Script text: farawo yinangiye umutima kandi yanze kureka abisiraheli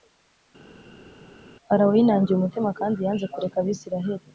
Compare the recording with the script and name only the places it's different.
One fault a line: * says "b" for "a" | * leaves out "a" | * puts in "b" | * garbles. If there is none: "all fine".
all fine